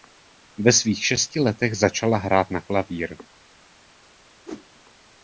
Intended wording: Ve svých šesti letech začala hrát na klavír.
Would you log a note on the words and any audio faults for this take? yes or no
yes